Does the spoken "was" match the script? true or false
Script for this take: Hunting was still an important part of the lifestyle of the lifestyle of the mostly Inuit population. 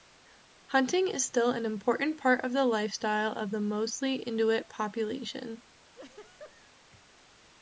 false